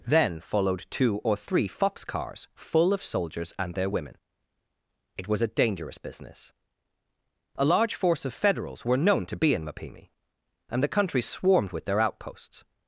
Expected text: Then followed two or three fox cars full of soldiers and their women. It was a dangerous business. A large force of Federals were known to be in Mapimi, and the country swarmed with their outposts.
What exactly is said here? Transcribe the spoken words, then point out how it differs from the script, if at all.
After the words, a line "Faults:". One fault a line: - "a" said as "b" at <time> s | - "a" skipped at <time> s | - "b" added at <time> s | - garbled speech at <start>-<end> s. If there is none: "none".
Then followed two or three fox cars full of soldiers and their women. It was a dangerous business. A large force of Federals were known to be in Mapimi, and the country swarmed with their outposts.
Faults:
none